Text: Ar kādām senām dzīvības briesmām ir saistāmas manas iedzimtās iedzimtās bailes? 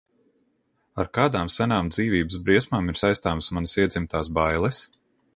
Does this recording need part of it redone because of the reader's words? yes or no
yes